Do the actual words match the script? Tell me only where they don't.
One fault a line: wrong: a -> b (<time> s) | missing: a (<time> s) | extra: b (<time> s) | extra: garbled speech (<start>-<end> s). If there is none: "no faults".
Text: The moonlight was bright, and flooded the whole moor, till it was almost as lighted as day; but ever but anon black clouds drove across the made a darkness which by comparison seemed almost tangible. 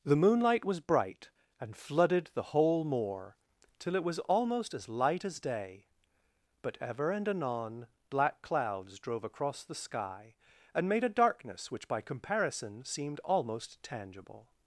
wrong: lighted -> light (4.9 s)
wrong: but -> and (7.1 s)
extra: sky and (9.7 s)